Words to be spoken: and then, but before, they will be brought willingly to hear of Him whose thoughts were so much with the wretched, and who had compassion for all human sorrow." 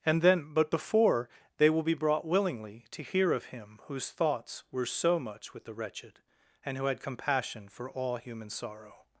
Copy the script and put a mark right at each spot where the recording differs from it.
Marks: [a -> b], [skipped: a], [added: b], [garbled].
and then, but before, they will be brought willingly to hear of Him whose thoughts were so much with the wretched, and who had compassion for all human sorrow."